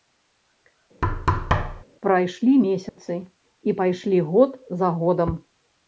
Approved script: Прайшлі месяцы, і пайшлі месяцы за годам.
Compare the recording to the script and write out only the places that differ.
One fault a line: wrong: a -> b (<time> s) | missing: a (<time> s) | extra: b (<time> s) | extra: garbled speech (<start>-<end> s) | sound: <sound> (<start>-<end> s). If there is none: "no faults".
sound: thud (1.0-1.8 s)
sound: dropout (2.9-3.0 s)
wrong: месяцы -> год (4.3 s)